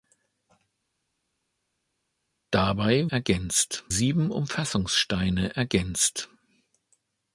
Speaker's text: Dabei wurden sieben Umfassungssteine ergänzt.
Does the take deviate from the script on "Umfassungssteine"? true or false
false